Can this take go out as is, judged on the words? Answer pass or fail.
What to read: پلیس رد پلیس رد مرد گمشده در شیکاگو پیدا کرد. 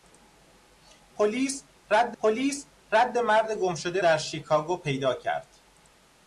pass